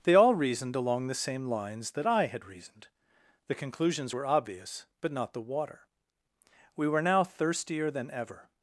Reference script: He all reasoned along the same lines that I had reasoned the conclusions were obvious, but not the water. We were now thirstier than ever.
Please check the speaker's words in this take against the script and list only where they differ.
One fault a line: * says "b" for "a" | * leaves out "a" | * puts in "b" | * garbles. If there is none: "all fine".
* says "They" for "He"